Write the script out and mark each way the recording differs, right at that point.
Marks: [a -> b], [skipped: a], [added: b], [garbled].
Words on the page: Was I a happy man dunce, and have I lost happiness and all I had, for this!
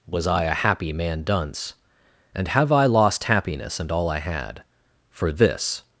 Was I a happy man dunce, and have I lost happiness and all I had, for this!